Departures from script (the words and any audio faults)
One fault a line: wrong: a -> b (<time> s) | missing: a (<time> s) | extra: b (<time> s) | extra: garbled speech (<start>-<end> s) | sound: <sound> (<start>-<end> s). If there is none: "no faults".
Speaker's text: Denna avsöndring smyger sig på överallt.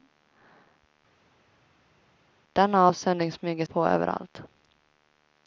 missing: sig (3.6 s)